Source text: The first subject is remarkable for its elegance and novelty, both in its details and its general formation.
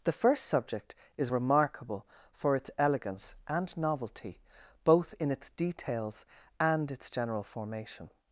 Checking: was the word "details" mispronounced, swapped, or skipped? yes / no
no